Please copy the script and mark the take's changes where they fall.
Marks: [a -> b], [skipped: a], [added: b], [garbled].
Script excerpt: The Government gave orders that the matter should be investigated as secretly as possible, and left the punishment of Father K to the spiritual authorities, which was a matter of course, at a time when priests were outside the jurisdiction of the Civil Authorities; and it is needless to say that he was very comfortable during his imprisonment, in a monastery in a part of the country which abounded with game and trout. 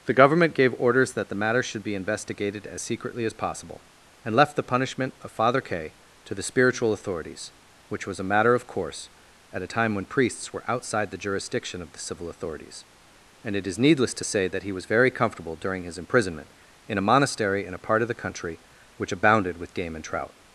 The Government gave orders that the matter should be investigated as secretly as possible, and left the punishment of Father K to the spiritual authorities, which was a matter of course, at a time when priests were outside the jurisdiction of the Civil Authorities; and it is needless to say that he was very comfortable during his imprisonment, in a monastery in a part of the country which abounded with game and trout.